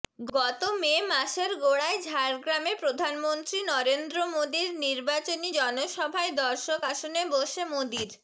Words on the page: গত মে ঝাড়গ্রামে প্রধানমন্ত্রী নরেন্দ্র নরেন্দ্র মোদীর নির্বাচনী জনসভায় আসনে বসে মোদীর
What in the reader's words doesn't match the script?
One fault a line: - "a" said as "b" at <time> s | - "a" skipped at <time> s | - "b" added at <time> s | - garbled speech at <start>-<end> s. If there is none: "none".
- "মাসের গোড়ায়" added at 1.1 s
- "নরেন্দ্র" skipped at 4.2 s
- "দর্শক" added at 6.4 s